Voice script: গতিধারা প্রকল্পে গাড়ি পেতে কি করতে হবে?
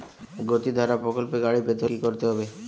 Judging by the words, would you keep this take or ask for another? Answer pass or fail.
pass